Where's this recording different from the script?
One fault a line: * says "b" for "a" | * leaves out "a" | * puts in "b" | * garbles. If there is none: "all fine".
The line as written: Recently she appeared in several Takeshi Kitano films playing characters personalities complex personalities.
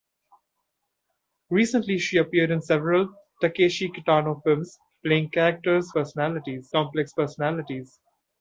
all fine